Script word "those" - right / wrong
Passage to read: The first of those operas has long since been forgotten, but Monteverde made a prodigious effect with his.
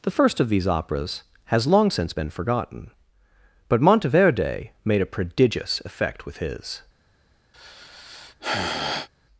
wrong